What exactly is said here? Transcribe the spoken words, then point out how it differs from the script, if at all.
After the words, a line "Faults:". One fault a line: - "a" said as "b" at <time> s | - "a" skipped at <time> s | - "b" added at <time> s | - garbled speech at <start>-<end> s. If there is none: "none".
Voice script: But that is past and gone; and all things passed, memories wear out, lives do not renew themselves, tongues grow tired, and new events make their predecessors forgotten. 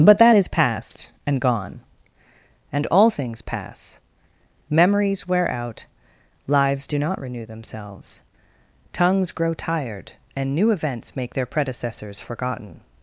But that is past and gone; and all things pass, memories wear out, lives do not renew themselves, tongues grow tired, and new events make their predecessors forgotten.
Faults:
- "passed" said as "pass" at 3.4 s